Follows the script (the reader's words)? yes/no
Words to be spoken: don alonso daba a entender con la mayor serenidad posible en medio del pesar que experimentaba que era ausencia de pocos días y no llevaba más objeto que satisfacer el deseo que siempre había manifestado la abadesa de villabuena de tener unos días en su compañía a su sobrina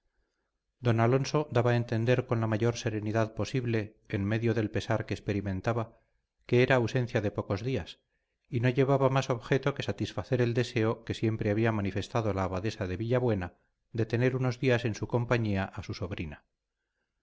yes